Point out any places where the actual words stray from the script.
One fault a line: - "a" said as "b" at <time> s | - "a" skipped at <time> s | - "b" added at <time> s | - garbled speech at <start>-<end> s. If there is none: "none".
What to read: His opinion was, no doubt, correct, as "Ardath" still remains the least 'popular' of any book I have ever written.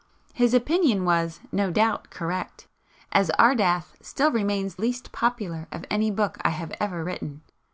- "the" skipped at 4.8 s